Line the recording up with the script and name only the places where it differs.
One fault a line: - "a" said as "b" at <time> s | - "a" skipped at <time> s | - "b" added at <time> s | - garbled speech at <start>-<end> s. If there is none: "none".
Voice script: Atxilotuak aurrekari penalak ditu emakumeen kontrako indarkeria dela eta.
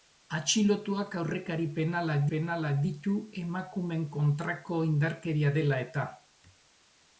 - "penalak" added at 2.3 s